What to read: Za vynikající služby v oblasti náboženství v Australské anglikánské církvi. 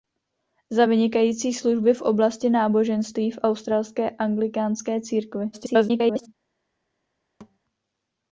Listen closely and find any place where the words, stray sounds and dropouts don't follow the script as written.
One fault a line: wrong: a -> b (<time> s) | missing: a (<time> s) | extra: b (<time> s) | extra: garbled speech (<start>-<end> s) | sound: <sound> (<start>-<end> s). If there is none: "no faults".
extra: garbled speech (5.5-6.3 s)
sound: thud (7.4-7.6 s)